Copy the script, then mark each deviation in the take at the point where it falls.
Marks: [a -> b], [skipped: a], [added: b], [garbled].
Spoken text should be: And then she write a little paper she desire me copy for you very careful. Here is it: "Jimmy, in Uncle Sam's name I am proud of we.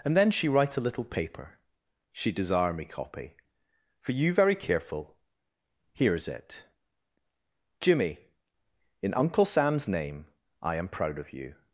And then she write a little paper she desire me copy for you very careful. Here is it: "Jimmy, in Uncle Sam's name I am proud of [we. -> you]